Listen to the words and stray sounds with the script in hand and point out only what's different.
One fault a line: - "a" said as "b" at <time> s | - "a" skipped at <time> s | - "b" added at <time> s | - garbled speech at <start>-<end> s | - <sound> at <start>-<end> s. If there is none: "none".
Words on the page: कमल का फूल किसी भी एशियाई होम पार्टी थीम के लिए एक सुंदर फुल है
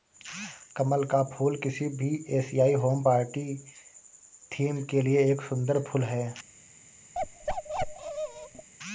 - bark at 7.1-8.7 s